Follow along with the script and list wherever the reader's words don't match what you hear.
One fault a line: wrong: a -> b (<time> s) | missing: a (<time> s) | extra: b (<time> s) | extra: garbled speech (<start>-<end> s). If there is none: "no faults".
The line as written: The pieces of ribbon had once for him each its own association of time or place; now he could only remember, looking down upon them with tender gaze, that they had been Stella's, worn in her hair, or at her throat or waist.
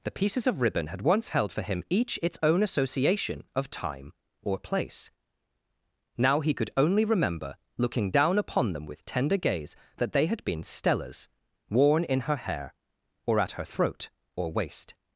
extra: held (1.3 s)